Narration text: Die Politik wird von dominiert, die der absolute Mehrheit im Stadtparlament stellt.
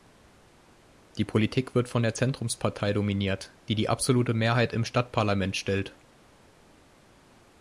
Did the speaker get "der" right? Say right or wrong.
wrong